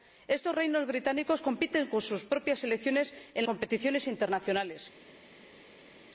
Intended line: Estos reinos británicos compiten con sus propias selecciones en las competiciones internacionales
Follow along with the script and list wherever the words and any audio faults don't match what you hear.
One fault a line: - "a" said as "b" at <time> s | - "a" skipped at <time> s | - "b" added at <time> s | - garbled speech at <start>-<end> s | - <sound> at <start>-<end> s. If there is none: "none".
- "las" skipped at 3.5 s